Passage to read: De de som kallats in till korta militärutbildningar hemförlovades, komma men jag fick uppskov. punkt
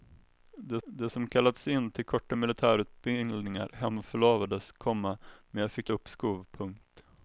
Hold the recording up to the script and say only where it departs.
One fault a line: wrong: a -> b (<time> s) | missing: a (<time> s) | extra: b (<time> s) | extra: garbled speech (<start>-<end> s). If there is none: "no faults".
no faults